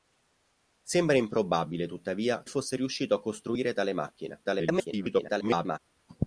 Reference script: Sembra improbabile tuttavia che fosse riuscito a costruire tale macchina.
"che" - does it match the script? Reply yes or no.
no